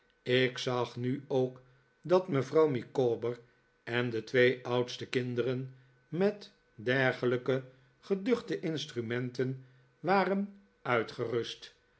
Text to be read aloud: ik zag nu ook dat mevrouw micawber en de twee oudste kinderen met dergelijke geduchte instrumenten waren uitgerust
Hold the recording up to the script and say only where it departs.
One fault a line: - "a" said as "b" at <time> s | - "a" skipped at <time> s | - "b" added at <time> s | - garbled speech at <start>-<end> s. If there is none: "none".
none